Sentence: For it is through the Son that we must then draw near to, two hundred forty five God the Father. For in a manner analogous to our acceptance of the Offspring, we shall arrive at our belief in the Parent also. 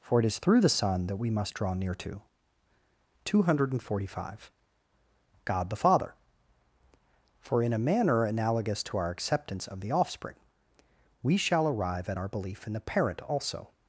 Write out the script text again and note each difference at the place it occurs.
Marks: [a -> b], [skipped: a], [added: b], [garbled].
For it is through the Son that we must [skipped: then] draw near to, two hundred forty five God the Father. For in a manner analogous to our acceptance of the Offspring, we shall arrive at our belief in the Parent also.